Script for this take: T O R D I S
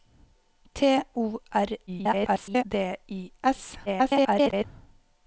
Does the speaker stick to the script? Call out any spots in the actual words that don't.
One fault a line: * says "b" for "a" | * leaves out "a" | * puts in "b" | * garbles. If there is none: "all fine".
* garbles
* garbles